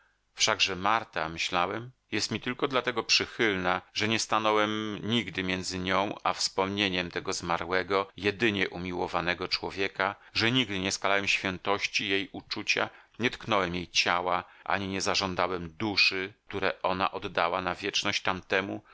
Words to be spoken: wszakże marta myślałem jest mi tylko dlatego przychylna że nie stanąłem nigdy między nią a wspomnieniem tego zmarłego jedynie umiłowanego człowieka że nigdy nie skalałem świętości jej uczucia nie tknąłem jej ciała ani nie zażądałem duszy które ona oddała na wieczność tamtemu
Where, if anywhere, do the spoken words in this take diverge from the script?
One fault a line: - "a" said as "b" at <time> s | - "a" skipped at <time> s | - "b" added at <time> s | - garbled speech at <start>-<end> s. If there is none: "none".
none